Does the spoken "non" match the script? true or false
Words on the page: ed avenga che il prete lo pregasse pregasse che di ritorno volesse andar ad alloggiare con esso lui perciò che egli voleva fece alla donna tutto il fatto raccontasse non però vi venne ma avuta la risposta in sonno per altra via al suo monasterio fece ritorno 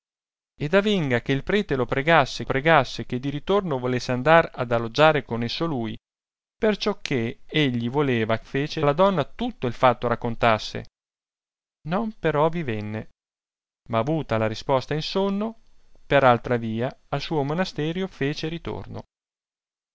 true